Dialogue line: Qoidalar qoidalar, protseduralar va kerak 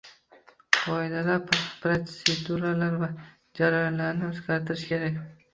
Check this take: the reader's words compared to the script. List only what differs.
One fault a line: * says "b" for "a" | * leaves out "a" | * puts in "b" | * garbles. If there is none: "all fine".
* leaves out "qoidalar"
* puts in "jarayonlarni o'zgartirish"